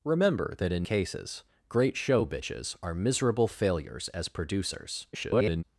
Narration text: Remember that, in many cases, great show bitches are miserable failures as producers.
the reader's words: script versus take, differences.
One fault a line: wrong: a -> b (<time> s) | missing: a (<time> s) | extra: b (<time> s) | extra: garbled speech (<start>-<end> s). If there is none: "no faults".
missing: many (0.9 s)
extra: garbled speech (5.1-5.6 s)